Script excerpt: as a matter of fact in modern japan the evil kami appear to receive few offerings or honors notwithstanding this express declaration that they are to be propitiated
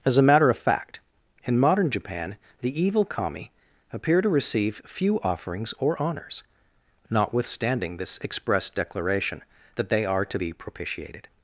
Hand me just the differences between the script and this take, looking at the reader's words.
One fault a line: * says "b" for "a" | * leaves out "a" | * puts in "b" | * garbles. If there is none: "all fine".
all fine